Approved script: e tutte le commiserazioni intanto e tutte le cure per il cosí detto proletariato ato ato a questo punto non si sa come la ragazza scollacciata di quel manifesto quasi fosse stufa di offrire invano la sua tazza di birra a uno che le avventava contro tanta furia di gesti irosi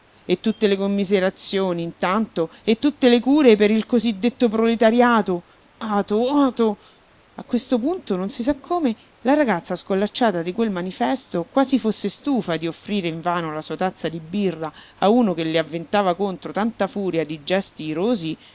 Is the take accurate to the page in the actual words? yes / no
yes